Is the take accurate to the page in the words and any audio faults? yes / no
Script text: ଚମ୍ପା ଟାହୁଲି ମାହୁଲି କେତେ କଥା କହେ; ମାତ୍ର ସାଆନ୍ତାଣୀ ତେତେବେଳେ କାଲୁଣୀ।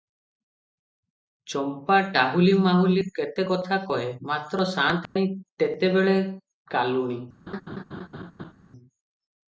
no